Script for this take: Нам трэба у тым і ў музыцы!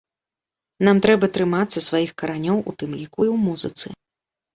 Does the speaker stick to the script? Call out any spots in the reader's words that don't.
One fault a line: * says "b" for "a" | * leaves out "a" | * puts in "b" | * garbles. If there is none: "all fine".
* puts in "трымацца сваіх каранёў"
* puts in "ліку"